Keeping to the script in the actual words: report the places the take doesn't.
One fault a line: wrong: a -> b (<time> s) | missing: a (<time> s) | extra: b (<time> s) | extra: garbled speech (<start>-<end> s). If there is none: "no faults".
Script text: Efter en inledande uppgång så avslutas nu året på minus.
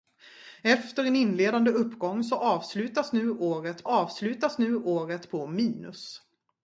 extra: avslutas nu året (3.8 s)